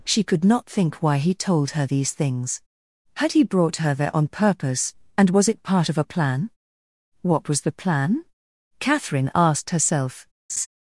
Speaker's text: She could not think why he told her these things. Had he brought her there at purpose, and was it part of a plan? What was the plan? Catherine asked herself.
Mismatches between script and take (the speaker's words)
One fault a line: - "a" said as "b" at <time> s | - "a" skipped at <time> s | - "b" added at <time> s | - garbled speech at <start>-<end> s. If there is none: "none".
- "at" said as "on" at 4.2 s